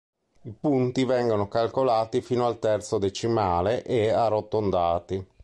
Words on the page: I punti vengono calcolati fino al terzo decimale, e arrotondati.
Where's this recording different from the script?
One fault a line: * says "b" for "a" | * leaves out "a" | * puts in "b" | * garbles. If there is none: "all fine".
all fine